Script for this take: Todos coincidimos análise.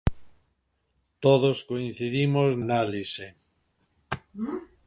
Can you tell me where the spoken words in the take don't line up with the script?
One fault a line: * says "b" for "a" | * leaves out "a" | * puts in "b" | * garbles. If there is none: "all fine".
all fine